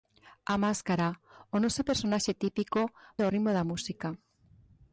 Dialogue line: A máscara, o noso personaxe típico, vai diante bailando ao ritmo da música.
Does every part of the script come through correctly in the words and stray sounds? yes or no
no